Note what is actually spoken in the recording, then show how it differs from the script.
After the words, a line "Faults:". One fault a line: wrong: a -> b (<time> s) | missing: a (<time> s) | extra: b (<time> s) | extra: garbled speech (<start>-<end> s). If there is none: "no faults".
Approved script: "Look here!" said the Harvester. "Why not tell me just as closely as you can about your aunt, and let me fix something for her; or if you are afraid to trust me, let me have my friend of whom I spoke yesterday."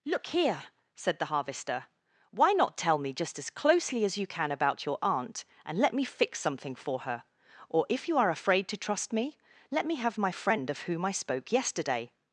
"Look here!" said the Harvester. "Why not tell me just as closely as you can about your aunt, and let me fix something for her; or if you are afraid to trust me, let me have my friend of whom I spoke yesterday."
Faults:
no faults